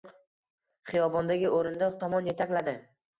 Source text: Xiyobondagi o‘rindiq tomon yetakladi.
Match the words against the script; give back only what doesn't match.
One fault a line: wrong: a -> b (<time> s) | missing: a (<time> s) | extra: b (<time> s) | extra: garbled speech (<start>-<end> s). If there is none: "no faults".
no faults